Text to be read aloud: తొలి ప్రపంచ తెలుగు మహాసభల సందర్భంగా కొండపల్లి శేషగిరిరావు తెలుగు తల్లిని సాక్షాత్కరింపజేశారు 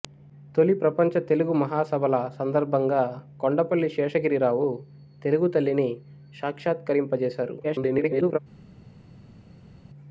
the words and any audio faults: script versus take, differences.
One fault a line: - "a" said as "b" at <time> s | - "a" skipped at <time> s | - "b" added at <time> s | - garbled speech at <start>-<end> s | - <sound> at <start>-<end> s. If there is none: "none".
- garbled speech at 7.6-8.4 s